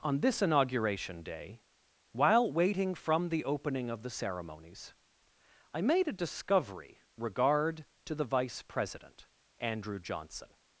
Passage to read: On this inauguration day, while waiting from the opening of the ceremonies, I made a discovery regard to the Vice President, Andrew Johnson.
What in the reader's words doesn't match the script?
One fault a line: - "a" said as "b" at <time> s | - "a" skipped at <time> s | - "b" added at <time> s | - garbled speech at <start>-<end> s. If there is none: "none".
none